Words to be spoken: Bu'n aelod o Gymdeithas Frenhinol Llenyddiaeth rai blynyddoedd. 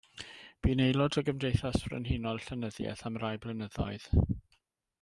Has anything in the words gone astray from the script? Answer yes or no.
yes